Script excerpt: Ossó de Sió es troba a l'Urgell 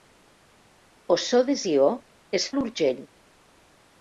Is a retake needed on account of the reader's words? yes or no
yes